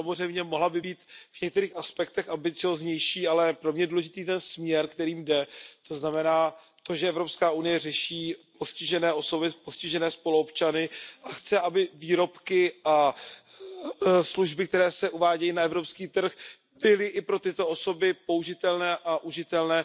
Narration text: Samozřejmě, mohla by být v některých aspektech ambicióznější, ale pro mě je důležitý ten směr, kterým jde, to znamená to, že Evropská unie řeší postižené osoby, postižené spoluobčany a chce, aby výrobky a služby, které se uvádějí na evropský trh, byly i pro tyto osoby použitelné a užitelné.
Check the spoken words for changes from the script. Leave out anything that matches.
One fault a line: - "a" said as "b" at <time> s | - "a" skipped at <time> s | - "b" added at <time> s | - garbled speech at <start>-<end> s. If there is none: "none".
none